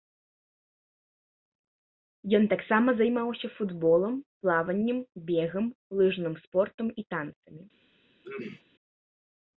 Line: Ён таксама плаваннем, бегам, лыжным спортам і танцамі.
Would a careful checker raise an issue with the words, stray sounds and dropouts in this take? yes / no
yes